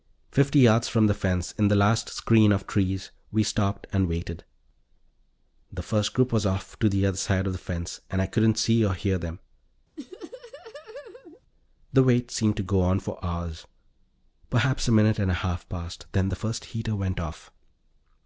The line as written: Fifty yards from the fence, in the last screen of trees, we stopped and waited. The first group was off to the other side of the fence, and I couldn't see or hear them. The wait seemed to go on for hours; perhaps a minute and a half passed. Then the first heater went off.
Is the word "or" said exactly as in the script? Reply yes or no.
yes